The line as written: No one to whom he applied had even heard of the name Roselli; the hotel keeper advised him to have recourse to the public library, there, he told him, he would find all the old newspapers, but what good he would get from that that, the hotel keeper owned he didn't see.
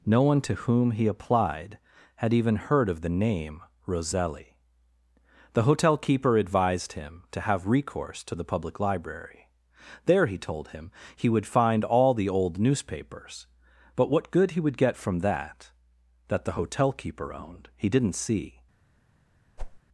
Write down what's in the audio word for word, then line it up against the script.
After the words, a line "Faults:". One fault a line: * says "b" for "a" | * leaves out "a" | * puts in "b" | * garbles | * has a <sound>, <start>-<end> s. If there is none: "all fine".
No one to whom he applied had even heard of the name Roselli; the hotel keeper advised him to have recourse to the public library, there, he told him, he would find all the old newspapers, but what good he would get from that that, the hotel keeper owned he didn't see.
Faults:
* has a whoosh, 19.6-19.8 s